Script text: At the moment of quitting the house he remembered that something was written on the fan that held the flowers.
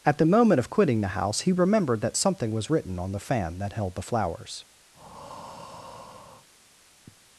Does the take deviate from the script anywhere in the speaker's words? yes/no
no